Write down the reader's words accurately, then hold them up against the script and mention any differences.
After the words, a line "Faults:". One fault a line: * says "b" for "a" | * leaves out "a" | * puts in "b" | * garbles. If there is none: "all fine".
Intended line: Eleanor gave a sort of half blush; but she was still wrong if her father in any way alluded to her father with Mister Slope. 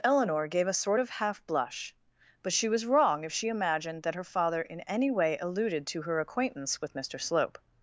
Eleanor gave a sort of half blush; but she was wrong if she imagined that her father in any way alluded to her acquaintance with Mister Slope.
Faults:
* leaves out "still"
* puts in "she imagined that"
* says "acquaintance" for "father"